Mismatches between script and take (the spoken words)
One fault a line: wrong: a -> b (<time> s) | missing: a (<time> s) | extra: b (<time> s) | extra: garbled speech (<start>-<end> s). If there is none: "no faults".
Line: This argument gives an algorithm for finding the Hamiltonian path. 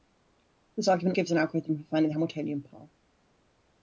no faults